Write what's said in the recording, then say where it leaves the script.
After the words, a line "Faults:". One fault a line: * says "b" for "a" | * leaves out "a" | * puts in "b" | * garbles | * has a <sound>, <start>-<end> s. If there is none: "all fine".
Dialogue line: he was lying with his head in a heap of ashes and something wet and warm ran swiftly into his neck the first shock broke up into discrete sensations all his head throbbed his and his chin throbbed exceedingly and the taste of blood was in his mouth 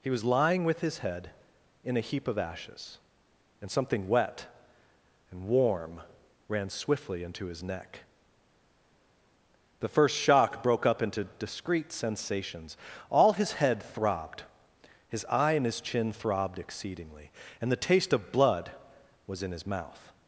he was lying with his head in a heap of ashes and something wet and warm ran swiftly into his neck the first shock broke up into discrete sensations all his head throbbed his eye and his chin throbbed exceedingly and the taste of blood was in his mouth
Faults:
* puts in "eye"